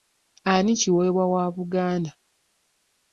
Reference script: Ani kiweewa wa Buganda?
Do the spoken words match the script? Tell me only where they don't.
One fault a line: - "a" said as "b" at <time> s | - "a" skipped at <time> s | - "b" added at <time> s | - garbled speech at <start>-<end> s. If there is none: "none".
none